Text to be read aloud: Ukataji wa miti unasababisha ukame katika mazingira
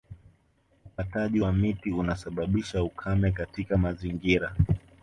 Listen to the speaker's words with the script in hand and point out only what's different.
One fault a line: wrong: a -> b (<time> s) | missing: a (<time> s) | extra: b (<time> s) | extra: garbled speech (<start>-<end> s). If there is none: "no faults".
no faults